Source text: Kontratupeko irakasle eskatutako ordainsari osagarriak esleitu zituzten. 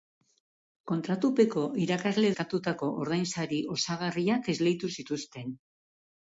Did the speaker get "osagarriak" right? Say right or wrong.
right